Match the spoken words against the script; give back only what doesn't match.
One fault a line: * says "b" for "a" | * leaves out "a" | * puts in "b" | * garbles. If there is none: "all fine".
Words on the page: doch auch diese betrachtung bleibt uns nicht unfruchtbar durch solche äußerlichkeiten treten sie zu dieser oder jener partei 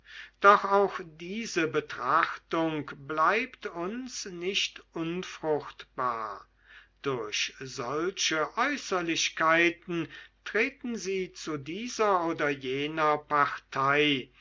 all fine